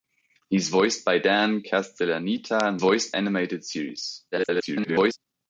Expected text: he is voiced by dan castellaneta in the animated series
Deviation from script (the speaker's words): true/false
true